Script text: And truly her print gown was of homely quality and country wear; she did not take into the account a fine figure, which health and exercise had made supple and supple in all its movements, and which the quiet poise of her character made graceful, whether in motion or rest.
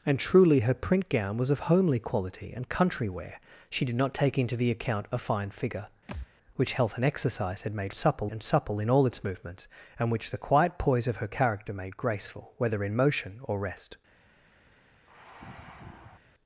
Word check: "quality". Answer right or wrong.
right